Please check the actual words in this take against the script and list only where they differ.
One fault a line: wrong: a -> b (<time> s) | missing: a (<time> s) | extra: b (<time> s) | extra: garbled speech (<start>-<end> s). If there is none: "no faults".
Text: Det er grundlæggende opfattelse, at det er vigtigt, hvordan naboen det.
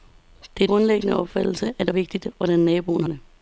no faults